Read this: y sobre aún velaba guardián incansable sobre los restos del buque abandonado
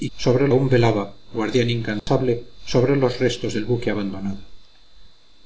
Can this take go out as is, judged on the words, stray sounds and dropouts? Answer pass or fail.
fail